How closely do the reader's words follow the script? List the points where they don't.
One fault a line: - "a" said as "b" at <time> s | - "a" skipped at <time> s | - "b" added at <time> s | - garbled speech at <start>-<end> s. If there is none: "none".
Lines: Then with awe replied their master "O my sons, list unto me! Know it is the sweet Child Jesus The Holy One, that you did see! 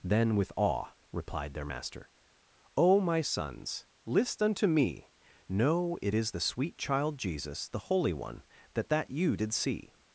- "that" added at 8.9 s